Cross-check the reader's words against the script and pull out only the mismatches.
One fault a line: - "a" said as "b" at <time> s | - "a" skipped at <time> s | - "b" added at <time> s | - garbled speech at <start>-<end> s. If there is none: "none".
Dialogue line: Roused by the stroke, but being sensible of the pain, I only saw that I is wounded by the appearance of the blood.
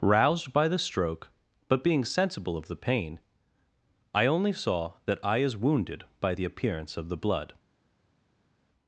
none